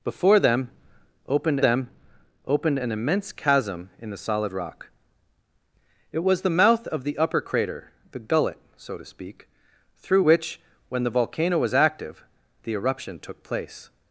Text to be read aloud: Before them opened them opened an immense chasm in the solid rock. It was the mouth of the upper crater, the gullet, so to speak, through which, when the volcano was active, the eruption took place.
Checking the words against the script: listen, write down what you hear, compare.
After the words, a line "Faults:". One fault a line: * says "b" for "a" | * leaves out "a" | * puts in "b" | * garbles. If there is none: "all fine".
Before them opened them opened an immense chasm in the solid rock. It was the mouth of the upper crater, the gullet, so to speak, through which, when the volcano was active, the eruption took place.
Faults:
all fine